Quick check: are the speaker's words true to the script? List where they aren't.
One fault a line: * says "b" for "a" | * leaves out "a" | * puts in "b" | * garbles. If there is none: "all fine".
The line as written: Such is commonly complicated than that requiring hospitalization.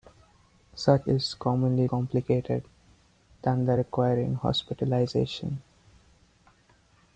all fine